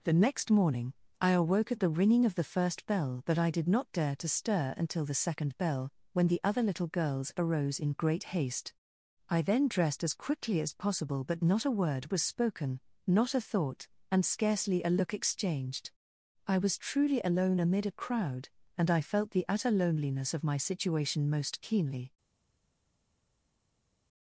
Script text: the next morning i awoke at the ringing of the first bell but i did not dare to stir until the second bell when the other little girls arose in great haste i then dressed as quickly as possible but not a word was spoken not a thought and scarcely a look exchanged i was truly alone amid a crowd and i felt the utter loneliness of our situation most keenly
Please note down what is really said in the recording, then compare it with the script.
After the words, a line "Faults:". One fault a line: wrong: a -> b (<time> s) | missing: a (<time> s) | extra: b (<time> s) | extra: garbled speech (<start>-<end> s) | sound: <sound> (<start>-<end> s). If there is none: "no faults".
the next morning i awoke at the ringing of the first bell but i did not dare to stir until the second bell when the other little girls arose in great haste i then dressed as quickly as possible but not a word was spoken not a thought and scarcely a look exchanged i was truly alone amid a crowd and i felt the utter loneliness of my situation most keenly
Faults:
wrong: our -> my (20.4 s)